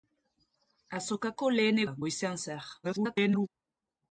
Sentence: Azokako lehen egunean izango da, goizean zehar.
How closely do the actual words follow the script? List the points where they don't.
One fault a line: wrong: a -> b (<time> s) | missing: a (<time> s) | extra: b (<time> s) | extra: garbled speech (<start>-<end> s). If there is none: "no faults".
missing: egunean izango (1.8 s)
extra: garbled speech (2.8-3.5 s)